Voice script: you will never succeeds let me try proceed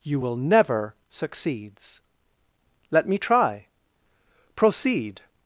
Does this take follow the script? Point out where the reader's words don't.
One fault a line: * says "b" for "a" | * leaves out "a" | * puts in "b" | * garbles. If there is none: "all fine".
all fine